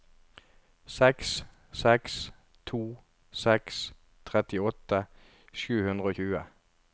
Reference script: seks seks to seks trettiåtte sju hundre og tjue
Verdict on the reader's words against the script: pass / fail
pass